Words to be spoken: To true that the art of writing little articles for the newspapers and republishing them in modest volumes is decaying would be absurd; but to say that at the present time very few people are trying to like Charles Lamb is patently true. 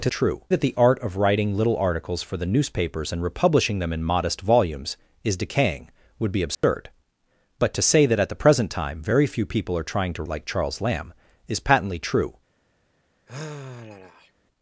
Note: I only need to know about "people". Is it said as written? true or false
true